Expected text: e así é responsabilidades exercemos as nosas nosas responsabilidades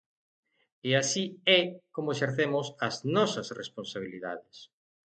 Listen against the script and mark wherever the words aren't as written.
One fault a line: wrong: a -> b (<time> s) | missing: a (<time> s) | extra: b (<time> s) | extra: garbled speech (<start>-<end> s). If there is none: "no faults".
wrong: responsabilidades -> como (2.0 s)
missing: nosas (3.5 s)